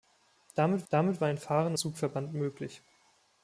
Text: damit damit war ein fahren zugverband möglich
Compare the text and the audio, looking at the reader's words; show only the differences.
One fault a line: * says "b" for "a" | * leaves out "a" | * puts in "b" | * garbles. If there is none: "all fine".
all fine